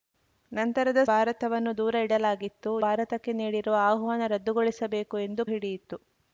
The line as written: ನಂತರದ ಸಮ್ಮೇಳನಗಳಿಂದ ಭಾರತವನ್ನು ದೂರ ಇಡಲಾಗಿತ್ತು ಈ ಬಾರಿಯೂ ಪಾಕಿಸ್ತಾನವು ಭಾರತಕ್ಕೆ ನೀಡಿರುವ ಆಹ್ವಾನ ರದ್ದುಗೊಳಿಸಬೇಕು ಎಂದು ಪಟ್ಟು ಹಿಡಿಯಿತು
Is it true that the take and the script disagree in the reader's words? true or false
true